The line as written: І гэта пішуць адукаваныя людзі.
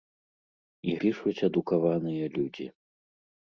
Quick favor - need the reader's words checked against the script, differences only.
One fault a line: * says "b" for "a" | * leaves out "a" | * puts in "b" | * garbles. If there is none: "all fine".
* leaves out "гэта"